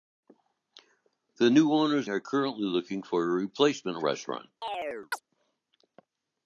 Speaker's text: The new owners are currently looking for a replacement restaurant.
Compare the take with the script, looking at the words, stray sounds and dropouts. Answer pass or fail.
fail